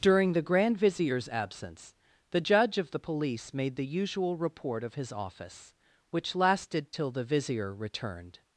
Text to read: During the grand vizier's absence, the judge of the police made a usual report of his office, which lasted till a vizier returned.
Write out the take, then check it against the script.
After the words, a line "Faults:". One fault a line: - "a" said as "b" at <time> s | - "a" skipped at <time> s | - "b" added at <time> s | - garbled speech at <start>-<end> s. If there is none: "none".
During the grand vizier's absence, the judge of the police made the usual report of his office, which lasted till the vizier returned.
Faults:
- "a" said as "the" at 3.8 s
- "a" said as "the" at 7.1 s